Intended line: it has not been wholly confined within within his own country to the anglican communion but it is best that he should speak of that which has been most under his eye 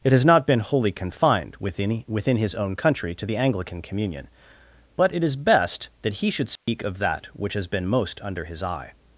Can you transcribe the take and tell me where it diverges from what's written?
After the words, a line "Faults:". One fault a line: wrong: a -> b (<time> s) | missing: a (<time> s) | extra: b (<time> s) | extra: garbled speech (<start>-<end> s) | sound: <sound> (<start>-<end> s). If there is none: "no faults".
it has not been wholly confined within within his own country to the anglican communion but it is best that he should speak of that which has been most under his eye
Faults:
sound: dropout (6.6-6.7 s)